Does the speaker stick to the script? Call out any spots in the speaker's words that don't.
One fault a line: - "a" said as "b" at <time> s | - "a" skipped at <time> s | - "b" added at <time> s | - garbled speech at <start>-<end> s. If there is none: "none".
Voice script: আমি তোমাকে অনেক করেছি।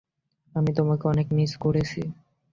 - "মিস" added at 1.3 s